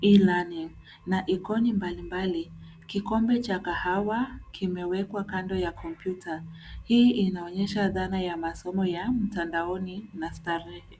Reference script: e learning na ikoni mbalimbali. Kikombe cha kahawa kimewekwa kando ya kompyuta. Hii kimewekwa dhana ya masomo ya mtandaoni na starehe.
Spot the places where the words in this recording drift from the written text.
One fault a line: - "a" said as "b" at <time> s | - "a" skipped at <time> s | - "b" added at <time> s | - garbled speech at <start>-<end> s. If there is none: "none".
- "kimewekwa" said as "inaonyesha" at 7.1 s